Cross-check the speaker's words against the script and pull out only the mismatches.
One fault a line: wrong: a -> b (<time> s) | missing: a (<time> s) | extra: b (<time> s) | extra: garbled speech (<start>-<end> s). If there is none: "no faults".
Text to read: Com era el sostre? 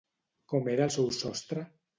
extra: seu (1.0 s)